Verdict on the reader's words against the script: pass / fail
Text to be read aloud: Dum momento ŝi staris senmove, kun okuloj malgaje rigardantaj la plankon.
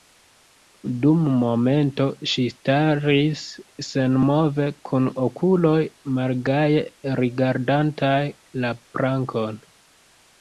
pass